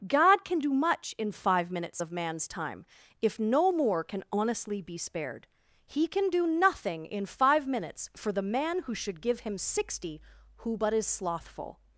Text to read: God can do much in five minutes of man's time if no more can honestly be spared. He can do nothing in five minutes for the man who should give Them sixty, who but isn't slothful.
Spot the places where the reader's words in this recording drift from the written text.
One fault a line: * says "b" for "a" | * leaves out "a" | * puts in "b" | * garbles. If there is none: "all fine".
* says "Him" for "Them"
* says "is" for "isn't"